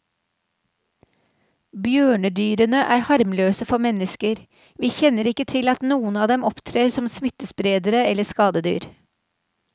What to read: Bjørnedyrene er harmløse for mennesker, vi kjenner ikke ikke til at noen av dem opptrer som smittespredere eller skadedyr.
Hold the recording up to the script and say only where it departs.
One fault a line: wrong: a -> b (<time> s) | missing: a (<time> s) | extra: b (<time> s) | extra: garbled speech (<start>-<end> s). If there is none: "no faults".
missing: ikke (5.5 s)